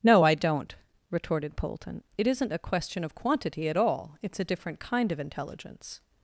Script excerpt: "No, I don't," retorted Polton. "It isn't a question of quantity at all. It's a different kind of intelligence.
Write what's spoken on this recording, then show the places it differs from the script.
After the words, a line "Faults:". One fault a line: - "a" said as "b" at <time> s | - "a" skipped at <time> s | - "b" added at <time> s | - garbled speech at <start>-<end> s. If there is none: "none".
"No, I don't," retorted Polton. "It isn't a question of quantity at all. It's a different kind of intelligence.
Faults:
none